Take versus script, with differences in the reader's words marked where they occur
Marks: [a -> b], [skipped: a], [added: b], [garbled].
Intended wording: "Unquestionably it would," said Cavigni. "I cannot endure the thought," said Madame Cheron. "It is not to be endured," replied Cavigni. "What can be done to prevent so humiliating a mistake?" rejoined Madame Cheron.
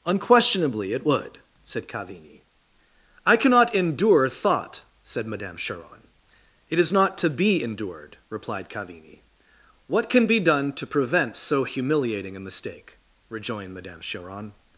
"Unquestionably it would," said Cavigni. "I cannot endure [skipped: the] thought," said Madame Cheron. "It is not to be endured," replied Cavigni. "What can be done to prevent so humiliating a mistake?" rejoined Madame Cheron.